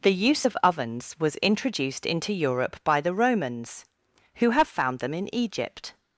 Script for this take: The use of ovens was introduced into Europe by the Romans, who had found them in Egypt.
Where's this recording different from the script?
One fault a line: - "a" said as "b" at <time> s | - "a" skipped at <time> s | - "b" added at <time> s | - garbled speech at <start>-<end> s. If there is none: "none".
- "had" said as "have" at 4.5 s